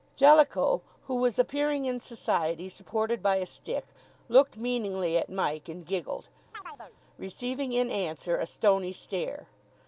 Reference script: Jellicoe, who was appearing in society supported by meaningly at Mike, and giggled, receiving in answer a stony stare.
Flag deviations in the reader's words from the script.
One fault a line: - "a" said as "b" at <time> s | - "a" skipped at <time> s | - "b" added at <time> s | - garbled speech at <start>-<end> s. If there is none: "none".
- "a stick looked" added at 3.4 s